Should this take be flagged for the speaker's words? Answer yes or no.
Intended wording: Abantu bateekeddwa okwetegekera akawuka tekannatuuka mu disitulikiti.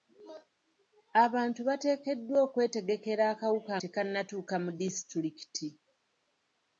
no